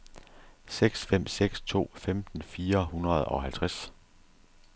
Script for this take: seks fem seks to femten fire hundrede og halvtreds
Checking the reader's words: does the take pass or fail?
pass